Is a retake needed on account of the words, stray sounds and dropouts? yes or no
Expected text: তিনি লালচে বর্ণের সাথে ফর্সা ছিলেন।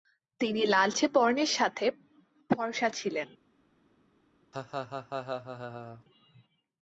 yes